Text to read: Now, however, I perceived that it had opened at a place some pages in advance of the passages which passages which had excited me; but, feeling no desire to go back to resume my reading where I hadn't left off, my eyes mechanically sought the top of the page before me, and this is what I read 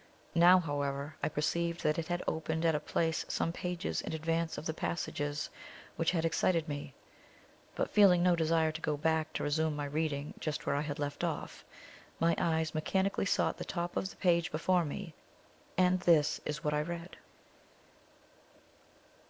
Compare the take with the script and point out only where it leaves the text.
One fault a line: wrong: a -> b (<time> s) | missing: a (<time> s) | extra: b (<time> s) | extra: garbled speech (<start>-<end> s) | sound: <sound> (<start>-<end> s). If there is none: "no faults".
missing: passages which (6.1 s)
extra: just (10.4 s)
wrong: hadn't -> had (10.8 s)